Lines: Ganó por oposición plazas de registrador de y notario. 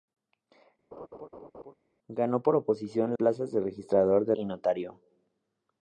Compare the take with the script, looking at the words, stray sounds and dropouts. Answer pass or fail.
fail